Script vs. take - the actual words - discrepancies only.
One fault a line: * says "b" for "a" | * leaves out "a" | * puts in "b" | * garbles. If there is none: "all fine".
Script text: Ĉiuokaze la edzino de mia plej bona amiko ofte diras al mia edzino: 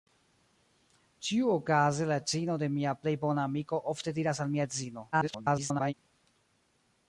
* garbles